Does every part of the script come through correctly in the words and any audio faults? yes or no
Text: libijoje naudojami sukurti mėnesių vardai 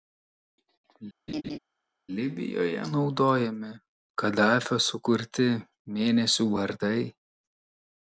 no